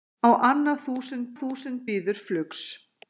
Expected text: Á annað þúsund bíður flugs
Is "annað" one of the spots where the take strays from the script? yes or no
no